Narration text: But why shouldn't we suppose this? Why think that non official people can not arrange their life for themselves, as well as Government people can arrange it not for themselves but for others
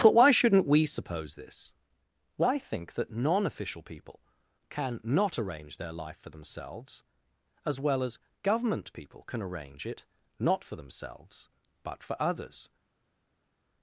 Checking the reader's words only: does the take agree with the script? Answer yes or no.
yes